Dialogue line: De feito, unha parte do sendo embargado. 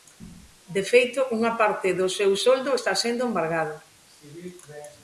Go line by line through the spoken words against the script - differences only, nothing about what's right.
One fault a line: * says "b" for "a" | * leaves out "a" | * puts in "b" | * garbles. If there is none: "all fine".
* puts in "seu soldo está"